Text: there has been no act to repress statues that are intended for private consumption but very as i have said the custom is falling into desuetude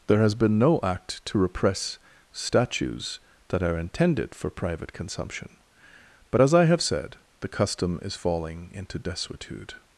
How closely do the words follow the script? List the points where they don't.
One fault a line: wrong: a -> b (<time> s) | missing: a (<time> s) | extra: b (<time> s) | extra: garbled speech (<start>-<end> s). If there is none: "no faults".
missing: very (6.4 s)